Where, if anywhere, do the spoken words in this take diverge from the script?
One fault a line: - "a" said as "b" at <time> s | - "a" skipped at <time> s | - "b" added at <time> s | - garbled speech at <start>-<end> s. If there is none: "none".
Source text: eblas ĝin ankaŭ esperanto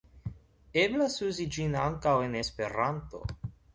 - "uzi" added at 1.3 s
- "en" added at 2.3 s